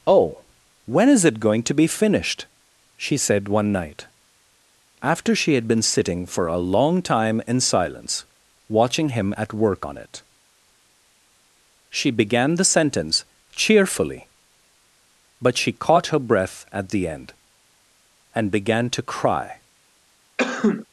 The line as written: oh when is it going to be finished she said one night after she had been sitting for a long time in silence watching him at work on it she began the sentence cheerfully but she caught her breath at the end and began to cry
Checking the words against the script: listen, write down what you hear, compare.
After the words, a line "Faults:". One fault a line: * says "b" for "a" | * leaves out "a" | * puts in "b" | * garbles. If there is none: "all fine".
oh when is it going to be finished she said one night after she had been sitting for a long time in silence watching him at work on it she began the sentence cheerfully but she caught her breath at the end and began to cry
Faults:
all fine